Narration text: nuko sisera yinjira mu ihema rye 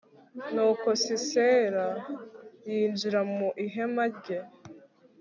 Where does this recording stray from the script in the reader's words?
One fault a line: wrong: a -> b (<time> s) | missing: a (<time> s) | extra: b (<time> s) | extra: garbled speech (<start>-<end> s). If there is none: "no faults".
no faults